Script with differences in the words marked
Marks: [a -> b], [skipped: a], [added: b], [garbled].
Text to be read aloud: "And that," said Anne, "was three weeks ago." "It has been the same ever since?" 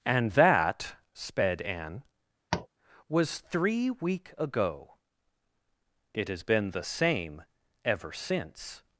"And that," [said -> sped] Anne, "was three [weeks -> week] ago." "It has been the same ever since?"